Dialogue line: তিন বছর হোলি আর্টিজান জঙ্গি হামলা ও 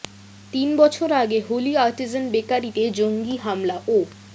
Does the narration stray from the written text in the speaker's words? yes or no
yes